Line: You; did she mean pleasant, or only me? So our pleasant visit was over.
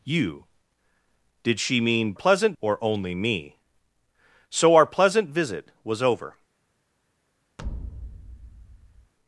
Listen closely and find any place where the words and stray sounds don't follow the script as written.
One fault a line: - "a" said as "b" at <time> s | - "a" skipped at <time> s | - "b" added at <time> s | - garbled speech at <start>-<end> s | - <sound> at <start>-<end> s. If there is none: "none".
- thud at 7.6-9.1 s